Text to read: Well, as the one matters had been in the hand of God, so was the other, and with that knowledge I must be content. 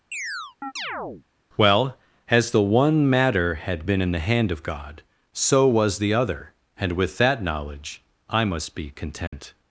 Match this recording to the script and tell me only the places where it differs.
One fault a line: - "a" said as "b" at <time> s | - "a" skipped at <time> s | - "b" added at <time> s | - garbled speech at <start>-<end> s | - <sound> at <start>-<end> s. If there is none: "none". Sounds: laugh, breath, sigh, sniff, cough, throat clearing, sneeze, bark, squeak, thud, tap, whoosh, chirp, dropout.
- chirp at 0.1-1.3 s
- "matters" said as "matter" at 3.1 s
- dropout at 9.3-9.3 s